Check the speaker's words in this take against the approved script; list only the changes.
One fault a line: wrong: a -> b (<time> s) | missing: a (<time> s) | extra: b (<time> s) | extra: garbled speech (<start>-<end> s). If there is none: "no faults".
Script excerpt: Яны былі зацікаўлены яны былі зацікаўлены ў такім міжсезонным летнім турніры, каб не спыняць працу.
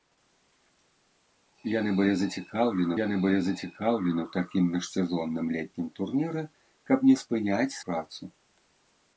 no faults